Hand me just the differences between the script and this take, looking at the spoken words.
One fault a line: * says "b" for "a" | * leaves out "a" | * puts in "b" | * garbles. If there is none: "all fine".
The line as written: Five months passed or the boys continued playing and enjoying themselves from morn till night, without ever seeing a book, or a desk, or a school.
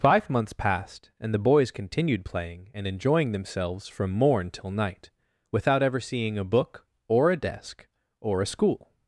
* says "and" for "or"